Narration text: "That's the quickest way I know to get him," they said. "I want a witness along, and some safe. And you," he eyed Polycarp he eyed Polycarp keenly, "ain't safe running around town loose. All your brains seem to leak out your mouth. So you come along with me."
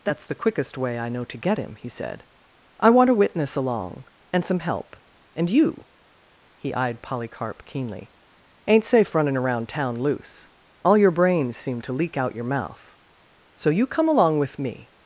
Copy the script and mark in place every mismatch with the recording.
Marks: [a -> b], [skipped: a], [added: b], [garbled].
"That's the quickest way I know to get him," [they -> he] said. "I want a witness along, and some [safe. -> help] And you," he eyed Polycarp [skipped: he eyed Polycarp] keenly, "ain't safe running around town loose. All your brains seem to leak out your mouth. So you come along with me."